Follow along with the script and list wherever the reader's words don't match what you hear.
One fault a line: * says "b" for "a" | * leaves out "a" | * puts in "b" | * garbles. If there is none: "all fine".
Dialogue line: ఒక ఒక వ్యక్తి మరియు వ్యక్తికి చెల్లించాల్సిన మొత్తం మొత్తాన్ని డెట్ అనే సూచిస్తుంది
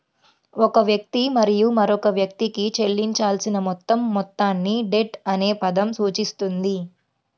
* leaves out "ఒక"
* puts in "మరొక"
* puts in "పదం"